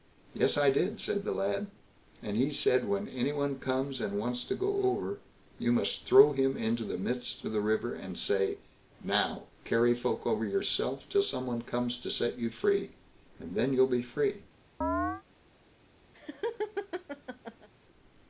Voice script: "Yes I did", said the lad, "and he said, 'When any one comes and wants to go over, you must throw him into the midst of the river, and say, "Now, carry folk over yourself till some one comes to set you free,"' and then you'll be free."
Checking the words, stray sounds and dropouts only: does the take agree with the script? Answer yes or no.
no